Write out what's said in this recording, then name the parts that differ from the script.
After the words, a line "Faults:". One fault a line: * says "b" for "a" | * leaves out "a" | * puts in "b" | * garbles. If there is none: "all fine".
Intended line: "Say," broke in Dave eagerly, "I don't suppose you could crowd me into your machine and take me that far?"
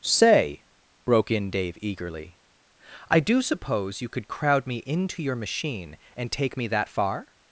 "Say," broke in Dave eagerly, "I do suppose you could crowd me into your machine and take me that far?"
Faults:
* says "do" for "don't"